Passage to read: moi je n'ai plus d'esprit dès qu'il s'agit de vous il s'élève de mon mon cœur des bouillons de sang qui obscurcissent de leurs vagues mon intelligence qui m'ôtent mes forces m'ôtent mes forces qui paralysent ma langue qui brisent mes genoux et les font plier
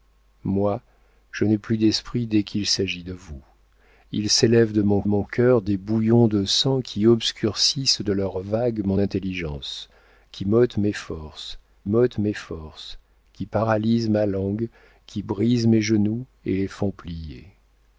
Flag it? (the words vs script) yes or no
no